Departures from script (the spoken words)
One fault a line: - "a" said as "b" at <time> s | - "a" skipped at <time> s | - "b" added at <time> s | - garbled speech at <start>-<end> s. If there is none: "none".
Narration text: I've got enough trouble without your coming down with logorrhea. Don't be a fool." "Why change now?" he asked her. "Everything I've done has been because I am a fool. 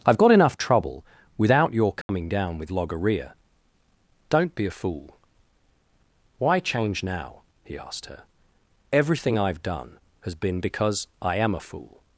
none